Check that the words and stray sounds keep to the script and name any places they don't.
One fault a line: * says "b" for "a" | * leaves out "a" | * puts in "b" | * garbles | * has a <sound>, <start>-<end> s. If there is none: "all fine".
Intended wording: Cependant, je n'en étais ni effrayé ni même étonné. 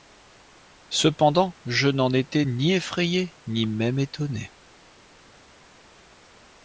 all fine